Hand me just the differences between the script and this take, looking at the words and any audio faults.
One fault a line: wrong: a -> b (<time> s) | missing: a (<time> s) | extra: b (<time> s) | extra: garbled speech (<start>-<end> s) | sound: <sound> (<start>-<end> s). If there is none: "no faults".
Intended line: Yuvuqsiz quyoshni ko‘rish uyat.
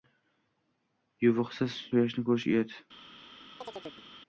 sound: chirp (3.6-4.0 s)